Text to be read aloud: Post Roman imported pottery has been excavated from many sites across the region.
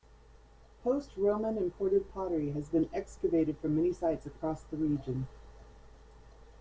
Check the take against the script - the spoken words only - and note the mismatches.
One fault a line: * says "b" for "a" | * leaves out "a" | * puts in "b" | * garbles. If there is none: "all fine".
all fine